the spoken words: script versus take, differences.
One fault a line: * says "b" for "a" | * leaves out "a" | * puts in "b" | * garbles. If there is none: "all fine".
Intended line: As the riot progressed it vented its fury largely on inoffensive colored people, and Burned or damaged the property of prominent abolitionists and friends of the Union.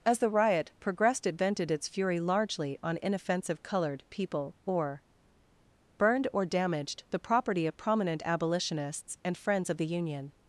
* says "or" for "and"